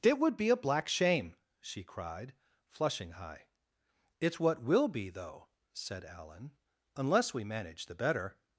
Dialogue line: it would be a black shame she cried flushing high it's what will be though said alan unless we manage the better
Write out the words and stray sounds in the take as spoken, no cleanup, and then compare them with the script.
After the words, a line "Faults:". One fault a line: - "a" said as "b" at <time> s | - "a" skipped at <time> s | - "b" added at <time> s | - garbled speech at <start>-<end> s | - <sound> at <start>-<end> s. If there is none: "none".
it would be a black shame she cried flushing high it's what will be though said alan unless we manage the better
Faults:
none